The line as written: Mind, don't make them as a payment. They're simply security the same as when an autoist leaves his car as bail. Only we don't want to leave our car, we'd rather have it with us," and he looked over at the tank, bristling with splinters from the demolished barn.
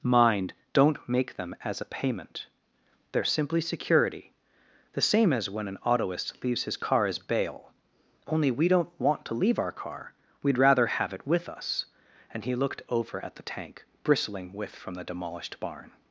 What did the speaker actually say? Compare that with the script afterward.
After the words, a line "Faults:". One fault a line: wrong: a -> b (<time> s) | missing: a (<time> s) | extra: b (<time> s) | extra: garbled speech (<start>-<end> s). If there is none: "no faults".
Mind, don't make them as a payment. They're simply security the same as when an autoist leaves his car as bail. Only we don't want to leave our car, we'd rather have it with us," and he looked over at the tank, bristling with from the demolished barn.
Faults:
missing: splinters (14.7 s)